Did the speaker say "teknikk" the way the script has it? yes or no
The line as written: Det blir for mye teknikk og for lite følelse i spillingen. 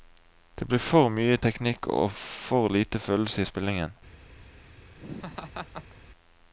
yes